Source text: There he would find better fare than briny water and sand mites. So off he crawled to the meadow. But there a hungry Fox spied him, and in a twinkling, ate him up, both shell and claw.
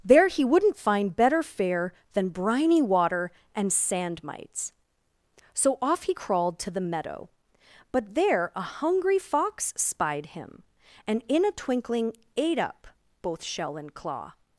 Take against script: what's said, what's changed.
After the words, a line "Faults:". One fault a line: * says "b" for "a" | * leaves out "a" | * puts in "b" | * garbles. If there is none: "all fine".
There he wouldn't find better fare than briny water and sand mites. So off he crawled to the meadow. But there a hungry Fox spied him, and in a twinkling, ate up, both shell and claw.
Faults:
* says "wouldn't" for "would"
* leaves out "him"